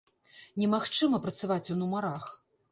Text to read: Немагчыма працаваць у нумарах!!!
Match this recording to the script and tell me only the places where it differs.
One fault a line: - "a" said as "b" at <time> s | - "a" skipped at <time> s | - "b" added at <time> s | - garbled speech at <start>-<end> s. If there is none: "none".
none